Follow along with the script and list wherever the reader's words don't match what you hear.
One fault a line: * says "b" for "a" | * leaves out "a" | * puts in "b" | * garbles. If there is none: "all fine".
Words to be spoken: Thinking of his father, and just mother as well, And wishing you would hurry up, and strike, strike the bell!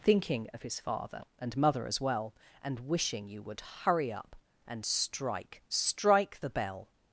* leaves out "just"